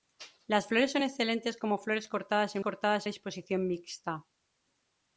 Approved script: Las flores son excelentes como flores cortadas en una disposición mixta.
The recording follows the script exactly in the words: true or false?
false